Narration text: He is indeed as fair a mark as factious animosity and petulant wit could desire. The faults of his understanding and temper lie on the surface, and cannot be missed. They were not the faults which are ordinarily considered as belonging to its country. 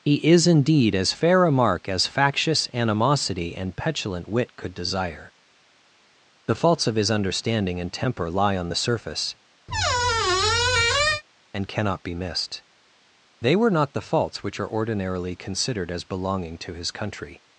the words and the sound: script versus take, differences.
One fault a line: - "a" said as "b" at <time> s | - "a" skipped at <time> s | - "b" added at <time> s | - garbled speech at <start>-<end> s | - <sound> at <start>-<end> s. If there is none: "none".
- squeak at 9.7-11.2 s
- "its" said as "his" at 16.7 s